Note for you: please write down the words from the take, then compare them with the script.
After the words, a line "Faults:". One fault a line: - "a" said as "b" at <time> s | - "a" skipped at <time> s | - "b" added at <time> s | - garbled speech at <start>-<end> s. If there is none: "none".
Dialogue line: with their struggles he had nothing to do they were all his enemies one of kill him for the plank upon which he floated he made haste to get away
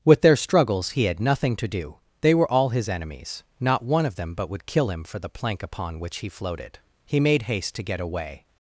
with their struggles he had nothing to do they were all his enemies not one of them but would kill him for the plank upon which he floated he made haste to get away
Faults:
- "not" added at 3.6 s
- "them but would" added at 4.2 s